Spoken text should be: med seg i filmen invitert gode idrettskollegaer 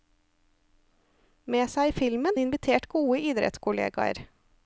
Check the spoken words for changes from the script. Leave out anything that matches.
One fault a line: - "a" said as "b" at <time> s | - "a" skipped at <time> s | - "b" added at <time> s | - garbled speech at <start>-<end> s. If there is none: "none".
none